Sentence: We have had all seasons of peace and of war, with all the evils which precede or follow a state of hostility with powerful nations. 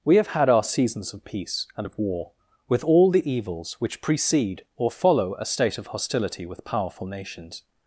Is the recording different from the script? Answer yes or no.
yes